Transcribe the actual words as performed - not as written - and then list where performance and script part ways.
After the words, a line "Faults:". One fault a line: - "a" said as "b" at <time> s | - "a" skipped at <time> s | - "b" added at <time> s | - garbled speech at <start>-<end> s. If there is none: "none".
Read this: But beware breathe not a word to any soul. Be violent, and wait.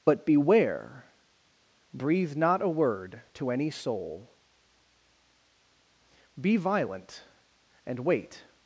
But beware breathe not a word to any soul. Be violent, and wait.
Faults:
none